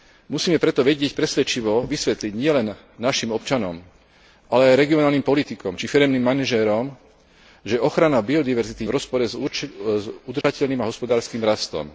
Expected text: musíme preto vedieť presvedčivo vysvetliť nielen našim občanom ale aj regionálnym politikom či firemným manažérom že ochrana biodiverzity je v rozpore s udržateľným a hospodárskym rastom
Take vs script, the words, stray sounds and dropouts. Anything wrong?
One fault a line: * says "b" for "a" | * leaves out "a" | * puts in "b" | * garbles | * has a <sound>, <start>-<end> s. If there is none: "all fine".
* has a dropout, 10.4-10.4 s